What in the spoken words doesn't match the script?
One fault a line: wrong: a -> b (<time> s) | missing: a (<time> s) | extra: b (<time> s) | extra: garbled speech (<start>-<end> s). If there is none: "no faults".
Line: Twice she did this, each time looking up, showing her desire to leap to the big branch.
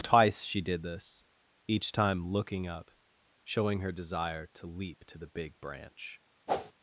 no faults